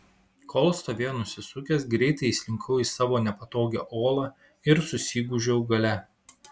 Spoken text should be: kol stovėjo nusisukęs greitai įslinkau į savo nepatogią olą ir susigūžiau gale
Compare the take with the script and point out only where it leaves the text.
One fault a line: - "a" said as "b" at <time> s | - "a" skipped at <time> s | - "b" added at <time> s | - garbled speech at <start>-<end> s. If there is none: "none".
none